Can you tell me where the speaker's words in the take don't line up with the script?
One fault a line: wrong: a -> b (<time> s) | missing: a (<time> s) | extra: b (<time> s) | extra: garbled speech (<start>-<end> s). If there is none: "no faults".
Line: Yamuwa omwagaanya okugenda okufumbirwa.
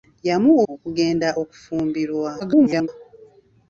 missing: omwagaanya (0.6 s)
extra: garbled speech (2.4-2.9 s)